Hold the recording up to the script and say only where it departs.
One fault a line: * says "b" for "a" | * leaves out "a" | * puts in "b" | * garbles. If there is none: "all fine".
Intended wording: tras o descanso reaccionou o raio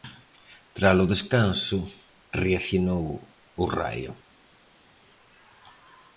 all fine